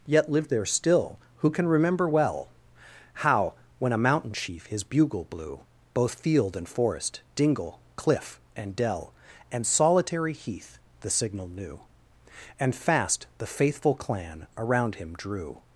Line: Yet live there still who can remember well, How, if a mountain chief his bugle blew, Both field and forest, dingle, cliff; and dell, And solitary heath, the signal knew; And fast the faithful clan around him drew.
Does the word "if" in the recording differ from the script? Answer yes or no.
yes